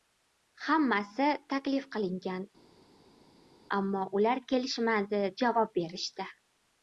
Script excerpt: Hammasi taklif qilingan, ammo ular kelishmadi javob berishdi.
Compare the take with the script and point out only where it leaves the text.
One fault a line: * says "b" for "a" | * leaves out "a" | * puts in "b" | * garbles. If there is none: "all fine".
all fine